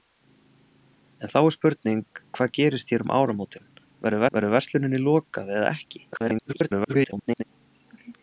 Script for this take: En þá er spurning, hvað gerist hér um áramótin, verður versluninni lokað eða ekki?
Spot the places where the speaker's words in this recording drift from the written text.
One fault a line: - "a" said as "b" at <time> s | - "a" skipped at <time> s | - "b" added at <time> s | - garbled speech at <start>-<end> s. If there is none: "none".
- "verður" added at 4.4 s
- garbled speech at 6.1-7.4 s